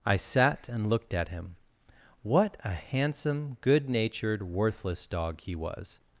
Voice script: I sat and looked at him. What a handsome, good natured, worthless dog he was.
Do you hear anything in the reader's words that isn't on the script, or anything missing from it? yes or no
no